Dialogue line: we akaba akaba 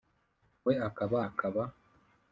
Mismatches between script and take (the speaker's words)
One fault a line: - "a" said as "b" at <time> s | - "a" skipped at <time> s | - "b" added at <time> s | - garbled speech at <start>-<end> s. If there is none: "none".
none